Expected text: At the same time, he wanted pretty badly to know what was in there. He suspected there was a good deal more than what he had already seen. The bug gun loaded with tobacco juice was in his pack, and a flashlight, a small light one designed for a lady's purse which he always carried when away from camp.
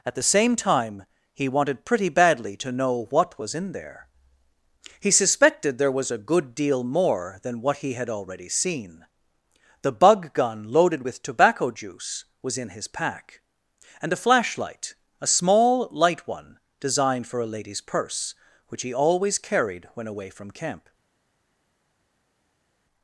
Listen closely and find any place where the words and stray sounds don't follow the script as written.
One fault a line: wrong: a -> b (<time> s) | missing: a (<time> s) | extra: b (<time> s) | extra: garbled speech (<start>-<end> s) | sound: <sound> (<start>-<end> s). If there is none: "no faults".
no faults